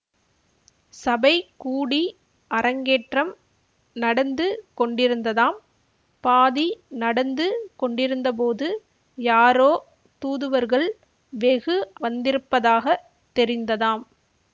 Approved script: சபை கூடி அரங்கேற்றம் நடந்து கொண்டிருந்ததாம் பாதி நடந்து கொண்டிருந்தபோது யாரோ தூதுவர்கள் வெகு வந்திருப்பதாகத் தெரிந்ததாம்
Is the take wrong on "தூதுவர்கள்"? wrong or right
right